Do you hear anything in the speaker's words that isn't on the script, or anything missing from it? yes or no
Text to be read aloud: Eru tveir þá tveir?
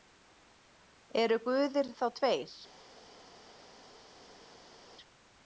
yes